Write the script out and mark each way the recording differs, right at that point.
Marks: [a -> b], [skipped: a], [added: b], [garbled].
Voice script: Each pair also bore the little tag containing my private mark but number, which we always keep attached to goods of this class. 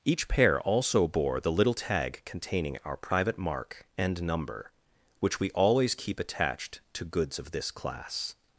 Each pair also bore the little tag containing [my -> our] private mark [but -> and] number, which we always keep attached to goods of this class.